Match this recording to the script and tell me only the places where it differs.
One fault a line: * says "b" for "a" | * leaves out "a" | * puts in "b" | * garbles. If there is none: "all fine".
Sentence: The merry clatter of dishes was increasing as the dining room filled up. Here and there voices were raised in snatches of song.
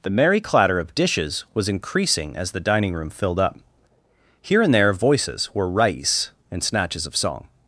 * says "rais" for "raised"